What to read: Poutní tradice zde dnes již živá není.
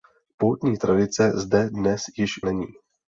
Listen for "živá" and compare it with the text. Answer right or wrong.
wrong